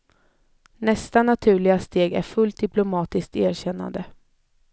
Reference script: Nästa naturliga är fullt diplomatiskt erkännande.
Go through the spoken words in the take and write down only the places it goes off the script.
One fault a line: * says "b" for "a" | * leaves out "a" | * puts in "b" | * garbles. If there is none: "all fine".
* puts in "steg"